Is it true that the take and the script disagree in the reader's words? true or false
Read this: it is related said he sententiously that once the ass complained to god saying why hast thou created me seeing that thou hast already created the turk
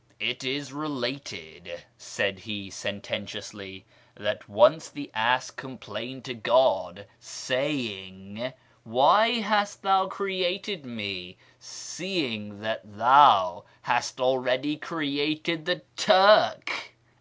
false